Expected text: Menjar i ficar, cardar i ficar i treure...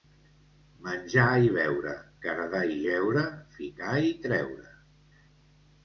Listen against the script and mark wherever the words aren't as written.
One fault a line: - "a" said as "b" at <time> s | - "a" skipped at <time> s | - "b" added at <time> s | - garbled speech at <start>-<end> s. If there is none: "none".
- "ficar" said as "beure" at 1.6 s
- "jeure" added at 2.9 s